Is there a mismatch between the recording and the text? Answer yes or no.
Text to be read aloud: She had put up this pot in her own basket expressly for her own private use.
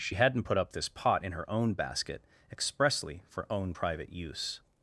yes